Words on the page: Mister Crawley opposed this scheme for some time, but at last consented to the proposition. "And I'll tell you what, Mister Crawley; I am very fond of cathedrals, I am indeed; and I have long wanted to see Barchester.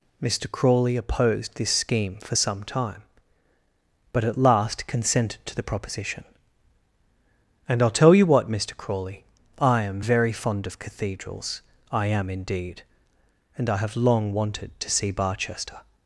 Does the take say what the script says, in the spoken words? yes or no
yes